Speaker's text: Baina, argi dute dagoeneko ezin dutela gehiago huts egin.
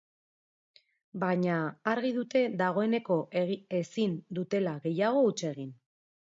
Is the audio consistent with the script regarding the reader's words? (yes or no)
yes